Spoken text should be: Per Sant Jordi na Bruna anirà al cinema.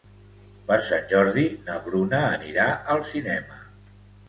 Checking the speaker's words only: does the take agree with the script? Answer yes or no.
yes